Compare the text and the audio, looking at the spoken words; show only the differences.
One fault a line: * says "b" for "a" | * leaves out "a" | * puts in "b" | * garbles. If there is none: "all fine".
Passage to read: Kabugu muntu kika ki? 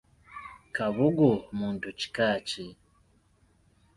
all fine